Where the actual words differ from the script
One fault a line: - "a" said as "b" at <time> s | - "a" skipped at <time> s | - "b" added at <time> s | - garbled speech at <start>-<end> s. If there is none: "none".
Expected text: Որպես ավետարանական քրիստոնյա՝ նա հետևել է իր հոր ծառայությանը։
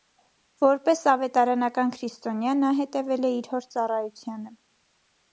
none